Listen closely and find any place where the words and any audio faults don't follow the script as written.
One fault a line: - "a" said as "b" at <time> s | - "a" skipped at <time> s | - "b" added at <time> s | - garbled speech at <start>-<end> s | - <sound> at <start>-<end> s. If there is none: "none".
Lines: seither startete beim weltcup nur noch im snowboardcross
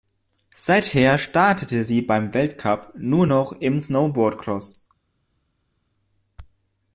- "sie" added at 1.8 s